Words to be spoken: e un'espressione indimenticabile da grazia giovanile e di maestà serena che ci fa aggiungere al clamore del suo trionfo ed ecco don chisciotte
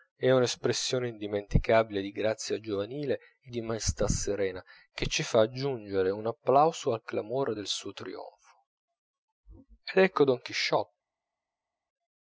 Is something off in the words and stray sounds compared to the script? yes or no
yes